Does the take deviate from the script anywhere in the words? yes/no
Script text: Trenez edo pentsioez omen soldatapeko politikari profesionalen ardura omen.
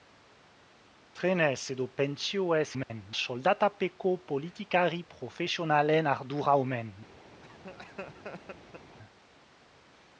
no